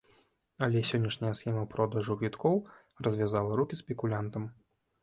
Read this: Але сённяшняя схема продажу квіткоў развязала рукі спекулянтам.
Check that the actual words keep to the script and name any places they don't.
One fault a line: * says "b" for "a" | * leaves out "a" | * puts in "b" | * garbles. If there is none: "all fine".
all fine